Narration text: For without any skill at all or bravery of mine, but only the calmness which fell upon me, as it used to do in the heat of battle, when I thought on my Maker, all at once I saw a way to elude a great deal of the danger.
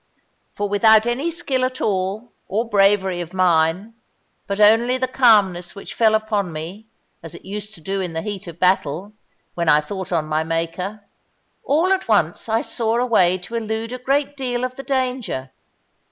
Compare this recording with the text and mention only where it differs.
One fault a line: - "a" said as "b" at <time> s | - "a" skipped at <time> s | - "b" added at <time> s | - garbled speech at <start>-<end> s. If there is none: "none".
none